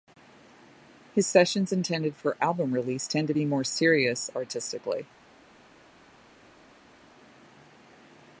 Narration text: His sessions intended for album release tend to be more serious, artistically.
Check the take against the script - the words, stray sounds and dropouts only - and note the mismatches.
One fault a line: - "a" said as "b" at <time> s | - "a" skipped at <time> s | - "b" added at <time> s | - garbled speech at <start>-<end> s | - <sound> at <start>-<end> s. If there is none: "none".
none